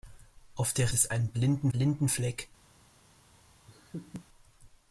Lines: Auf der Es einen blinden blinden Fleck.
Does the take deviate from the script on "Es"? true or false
false